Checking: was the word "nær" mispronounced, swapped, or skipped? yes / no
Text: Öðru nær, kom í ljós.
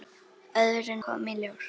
yes